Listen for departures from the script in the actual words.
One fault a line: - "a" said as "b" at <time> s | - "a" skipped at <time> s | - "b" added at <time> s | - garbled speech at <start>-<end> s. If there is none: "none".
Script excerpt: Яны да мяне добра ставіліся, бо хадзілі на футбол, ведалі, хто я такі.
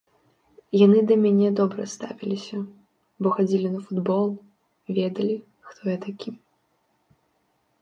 none